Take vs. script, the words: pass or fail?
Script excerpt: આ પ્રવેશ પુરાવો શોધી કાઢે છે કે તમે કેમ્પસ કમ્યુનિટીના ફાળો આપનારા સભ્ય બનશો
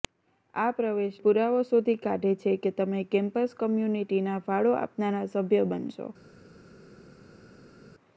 pass